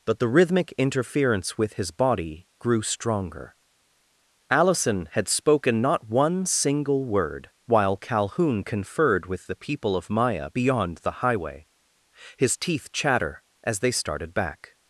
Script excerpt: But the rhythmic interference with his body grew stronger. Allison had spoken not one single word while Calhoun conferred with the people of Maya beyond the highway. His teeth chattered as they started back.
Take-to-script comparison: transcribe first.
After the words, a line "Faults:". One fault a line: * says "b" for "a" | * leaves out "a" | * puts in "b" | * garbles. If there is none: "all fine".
But the rhythmic interference with his body grew stronger. Allison had spoken not one single word while Calhoun conferred with the people of Maya beyond the highway. His teeth chatter as they started back.
Faults:
* says "chatter" for "chattered"